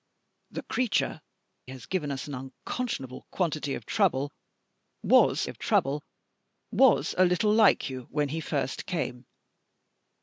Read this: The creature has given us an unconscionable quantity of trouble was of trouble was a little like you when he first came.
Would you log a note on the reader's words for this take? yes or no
no